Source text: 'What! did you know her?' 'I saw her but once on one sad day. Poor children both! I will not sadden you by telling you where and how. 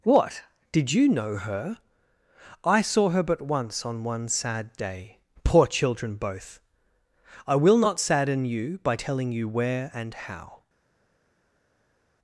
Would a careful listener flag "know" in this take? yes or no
no